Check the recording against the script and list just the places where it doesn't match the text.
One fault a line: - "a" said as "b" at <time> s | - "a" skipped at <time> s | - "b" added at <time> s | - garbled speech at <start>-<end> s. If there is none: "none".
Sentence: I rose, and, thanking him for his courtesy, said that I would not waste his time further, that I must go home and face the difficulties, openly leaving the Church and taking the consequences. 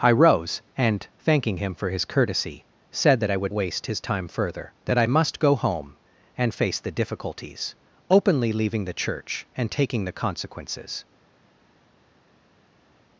- "not" skipped at 3.5 s